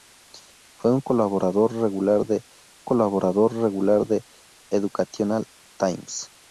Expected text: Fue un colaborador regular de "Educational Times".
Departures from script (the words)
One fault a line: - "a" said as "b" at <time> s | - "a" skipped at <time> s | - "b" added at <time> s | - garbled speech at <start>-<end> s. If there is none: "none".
- "colaborador regular de" added at 2.8 s